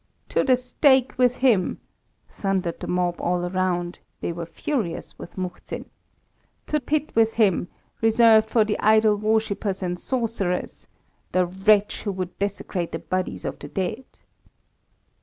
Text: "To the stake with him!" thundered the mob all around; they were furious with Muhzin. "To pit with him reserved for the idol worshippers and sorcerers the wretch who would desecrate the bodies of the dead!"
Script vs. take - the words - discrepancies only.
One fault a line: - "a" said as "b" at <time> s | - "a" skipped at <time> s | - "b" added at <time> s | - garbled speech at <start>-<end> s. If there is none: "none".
none